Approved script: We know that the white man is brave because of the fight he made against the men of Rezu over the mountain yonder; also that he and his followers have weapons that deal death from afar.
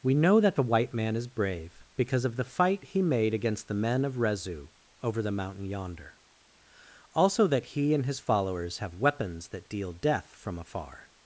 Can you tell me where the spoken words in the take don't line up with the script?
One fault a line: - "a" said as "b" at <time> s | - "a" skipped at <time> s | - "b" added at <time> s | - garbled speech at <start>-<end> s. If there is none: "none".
none